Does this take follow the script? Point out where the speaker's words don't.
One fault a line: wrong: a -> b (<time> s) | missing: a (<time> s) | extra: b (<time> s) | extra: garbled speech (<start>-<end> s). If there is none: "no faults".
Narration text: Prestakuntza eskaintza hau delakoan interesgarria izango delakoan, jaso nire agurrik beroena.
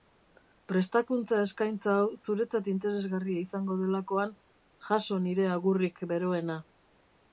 wrong: delakoan -> zuretzat (2.2 s)